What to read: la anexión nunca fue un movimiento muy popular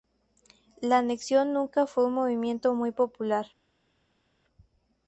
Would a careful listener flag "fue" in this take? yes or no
no